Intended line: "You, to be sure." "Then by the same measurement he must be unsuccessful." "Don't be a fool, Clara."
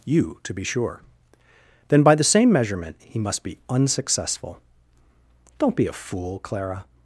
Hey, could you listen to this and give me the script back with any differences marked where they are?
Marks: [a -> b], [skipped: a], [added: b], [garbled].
"You, to be sure." "Then by the same measurement he must be unsuccessful." "Don't be a fool, Clara."